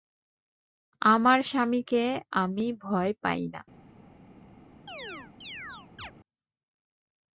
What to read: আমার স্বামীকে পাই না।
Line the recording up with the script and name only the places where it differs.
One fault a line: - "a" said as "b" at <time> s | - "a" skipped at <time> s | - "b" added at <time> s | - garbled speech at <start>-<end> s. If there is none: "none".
- "আমি ভয়" added at 2.3 s